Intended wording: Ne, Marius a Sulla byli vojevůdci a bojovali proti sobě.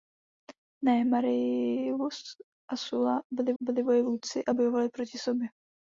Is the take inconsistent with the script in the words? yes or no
yes